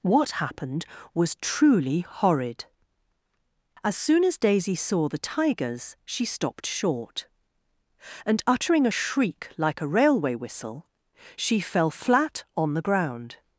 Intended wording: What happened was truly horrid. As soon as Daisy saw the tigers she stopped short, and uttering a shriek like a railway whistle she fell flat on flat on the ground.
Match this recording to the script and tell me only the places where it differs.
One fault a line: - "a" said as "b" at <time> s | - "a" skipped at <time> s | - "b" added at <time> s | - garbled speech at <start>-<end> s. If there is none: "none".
- "flat on" skipped at 12.7 s